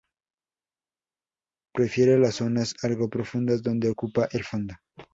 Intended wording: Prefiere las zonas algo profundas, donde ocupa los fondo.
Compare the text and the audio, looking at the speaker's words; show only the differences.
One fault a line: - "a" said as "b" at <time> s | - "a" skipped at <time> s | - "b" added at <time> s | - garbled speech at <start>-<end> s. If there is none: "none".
- "los" said as "el" at 4.3 s